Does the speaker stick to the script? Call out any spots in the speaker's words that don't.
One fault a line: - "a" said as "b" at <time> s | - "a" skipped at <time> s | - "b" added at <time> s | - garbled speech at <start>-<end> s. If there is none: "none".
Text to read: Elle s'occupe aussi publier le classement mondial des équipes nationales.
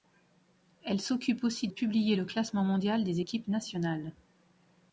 none